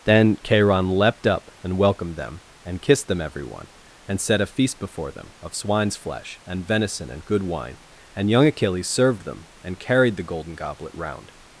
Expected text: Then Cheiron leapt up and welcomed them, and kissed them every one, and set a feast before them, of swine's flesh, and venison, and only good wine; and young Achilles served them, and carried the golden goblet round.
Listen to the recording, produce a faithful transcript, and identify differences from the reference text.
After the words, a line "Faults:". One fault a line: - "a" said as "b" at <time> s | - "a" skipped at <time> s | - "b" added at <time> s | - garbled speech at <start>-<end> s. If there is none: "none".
Then Cheiron leapt up and welcomed them, and kissed them every one, and set a feast before them, of swine's flesh, and venison, and good wine; and young Achilles served them, and carried the golden goblet round.
Faults:
- "only" skipped at 7.2 s